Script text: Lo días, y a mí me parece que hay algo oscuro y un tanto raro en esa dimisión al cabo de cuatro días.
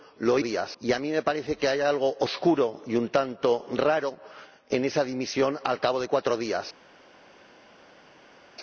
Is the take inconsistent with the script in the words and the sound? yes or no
no